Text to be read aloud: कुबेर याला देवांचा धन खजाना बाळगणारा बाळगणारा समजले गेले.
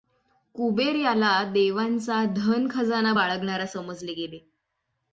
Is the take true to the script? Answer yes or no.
no